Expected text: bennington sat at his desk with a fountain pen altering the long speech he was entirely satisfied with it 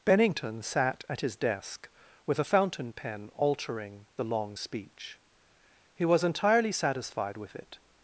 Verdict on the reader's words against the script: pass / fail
pass